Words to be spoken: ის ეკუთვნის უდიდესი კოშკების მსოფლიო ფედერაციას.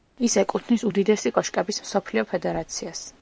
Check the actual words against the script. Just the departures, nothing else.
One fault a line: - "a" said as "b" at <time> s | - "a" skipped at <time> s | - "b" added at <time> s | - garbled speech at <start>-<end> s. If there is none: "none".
none